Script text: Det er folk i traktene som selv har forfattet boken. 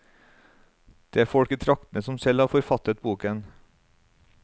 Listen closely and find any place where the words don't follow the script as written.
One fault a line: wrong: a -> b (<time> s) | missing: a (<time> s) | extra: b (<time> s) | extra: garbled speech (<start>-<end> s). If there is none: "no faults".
no faults